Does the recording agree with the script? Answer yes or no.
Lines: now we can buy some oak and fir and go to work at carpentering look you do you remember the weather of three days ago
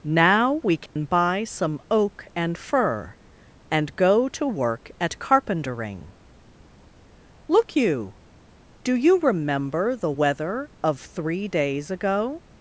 yes